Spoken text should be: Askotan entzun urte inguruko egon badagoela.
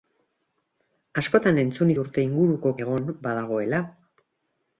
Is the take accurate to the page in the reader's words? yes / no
yes